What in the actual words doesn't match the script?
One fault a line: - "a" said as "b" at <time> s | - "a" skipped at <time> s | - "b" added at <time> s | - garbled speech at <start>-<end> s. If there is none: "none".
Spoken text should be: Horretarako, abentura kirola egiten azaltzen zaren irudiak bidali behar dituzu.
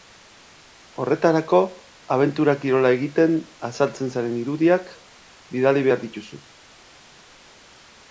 none